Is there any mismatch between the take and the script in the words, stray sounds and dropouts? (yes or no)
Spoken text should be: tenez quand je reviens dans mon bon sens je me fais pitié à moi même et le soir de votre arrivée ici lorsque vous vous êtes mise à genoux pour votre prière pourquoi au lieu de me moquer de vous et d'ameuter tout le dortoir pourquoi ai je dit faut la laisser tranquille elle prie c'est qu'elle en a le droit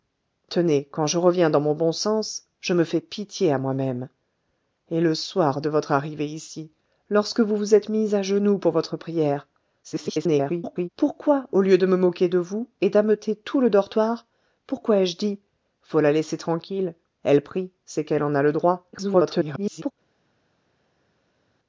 yes